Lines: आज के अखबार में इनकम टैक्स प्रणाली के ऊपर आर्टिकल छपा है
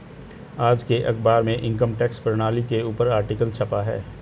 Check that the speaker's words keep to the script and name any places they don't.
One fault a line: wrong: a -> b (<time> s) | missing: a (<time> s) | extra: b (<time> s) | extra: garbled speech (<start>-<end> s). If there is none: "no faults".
no faults